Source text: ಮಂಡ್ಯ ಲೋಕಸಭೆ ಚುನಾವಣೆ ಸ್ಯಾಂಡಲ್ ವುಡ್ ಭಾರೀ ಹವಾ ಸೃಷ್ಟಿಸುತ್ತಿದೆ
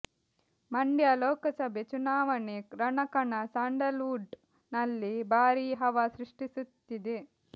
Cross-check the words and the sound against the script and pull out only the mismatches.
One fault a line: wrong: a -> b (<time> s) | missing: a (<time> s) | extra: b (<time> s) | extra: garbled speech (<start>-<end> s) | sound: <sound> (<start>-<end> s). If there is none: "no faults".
extra: ರಣಕಣ (2.8 s)
extra: ನಲ್ಲಿ (4.7 s)